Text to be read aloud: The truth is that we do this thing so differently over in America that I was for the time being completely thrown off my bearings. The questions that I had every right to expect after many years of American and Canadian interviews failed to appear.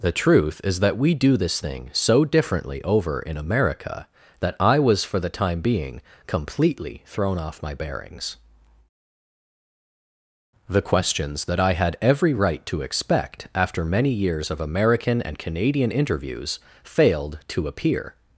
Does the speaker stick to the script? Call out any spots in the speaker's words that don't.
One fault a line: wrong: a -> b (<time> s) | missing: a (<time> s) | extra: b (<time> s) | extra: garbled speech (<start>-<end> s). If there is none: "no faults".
no faults